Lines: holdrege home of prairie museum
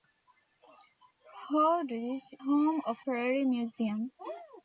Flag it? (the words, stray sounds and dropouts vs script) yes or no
no